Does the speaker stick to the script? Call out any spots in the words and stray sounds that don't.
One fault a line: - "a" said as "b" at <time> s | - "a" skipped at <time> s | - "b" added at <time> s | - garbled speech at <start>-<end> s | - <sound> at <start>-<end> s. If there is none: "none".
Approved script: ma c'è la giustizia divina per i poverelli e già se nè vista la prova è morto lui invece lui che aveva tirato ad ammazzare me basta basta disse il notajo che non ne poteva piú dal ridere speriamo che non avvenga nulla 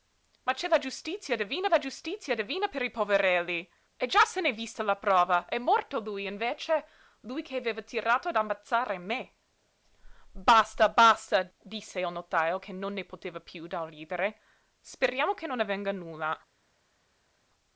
- "la giustizia divina" added at 1.7 s